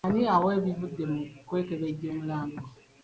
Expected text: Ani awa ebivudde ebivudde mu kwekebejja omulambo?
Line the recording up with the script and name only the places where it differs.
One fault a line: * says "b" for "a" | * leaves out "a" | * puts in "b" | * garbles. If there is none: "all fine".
* leaves out "ebivudde"